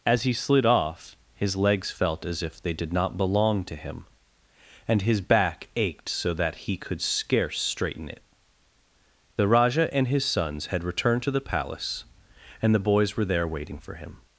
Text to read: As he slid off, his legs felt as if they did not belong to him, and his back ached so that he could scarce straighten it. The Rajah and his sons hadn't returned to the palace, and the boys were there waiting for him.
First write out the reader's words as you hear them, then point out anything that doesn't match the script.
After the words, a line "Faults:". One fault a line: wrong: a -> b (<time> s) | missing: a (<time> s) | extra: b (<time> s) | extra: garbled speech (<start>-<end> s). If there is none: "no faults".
As he slid off, his legs felt as if they did not belong to him, and his back ached so that he could scarce straighten it. The Rajah and his sons had returned to the palace, and the boys were there waiting for him.
Faults:
wrong: hadn't -> had (10.7 s)